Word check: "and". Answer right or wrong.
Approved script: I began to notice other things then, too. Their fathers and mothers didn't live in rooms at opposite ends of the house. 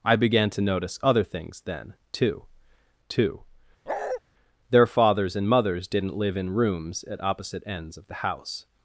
right